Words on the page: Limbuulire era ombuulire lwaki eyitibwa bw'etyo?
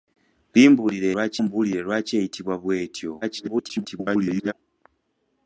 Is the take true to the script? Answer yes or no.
no